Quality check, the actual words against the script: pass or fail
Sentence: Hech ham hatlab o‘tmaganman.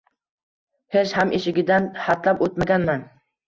fail